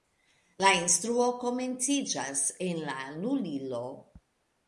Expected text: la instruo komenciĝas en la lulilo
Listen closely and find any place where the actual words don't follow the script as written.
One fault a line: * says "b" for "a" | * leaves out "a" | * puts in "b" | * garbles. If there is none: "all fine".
all fine